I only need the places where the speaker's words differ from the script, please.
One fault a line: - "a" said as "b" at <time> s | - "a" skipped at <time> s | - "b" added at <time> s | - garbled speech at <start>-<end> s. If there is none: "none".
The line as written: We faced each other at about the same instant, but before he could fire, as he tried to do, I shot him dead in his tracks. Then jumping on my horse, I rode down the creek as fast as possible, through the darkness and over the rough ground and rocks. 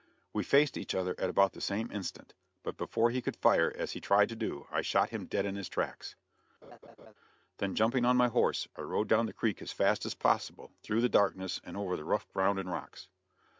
none